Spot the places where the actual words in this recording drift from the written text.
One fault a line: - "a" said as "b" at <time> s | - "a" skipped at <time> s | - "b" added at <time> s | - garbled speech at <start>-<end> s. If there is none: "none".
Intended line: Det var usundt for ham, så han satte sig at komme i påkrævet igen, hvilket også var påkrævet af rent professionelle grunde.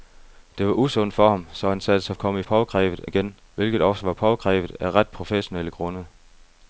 none